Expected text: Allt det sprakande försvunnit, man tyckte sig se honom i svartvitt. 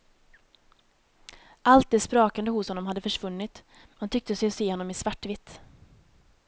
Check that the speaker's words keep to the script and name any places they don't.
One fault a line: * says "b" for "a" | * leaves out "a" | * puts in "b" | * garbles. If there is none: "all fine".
* puts in "hos honom hade"